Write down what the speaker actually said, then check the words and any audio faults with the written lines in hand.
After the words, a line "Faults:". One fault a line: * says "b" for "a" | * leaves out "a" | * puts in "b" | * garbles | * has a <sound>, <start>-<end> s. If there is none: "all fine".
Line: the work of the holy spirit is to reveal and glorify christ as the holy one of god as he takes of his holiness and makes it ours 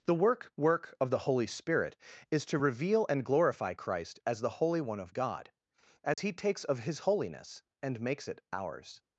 the work work of the holy spirit is to reveal and glorify christ as the holy one of god as he takes of his holiness and makes it ours
Faults:
* puts in "work"
* has a dropout, 6.1-6.2 s